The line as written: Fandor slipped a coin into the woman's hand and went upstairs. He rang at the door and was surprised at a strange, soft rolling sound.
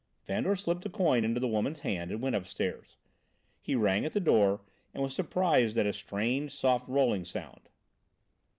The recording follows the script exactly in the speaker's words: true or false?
true